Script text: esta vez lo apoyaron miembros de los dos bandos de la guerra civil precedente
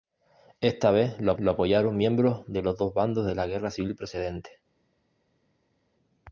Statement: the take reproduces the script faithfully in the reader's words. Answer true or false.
false